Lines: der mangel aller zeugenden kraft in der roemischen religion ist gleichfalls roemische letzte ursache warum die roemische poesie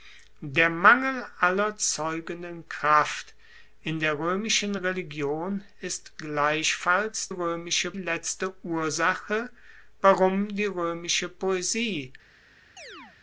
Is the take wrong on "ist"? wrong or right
right